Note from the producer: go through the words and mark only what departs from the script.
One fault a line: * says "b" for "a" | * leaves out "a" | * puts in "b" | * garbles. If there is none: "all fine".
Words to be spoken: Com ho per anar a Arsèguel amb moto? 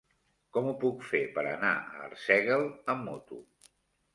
* puts in "puc fer"